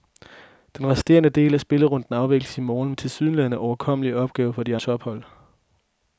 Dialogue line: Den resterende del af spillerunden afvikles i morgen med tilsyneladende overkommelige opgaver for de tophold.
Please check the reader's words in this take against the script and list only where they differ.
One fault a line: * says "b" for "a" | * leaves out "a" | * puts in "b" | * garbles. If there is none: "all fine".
all fine